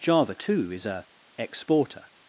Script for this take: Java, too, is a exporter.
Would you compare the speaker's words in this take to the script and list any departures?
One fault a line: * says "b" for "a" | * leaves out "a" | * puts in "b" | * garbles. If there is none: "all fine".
all fine